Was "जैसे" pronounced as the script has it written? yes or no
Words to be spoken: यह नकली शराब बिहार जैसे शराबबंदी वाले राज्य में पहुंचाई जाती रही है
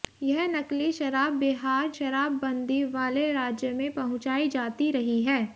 no